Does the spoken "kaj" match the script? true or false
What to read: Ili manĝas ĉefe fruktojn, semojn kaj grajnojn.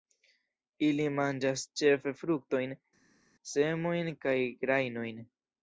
true